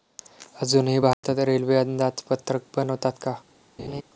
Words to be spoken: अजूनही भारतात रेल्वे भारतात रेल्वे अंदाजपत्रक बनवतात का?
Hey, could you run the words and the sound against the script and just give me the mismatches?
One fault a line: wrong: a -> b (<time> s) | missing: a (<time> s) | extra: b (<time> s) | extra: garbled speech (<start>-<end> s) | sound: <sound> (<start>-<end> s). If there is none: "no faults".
sound: dropout (1.1-1.2 s)
missing: भारतात रेल्वे (1.8 s)
sound: laugh (3.8-4.0 s)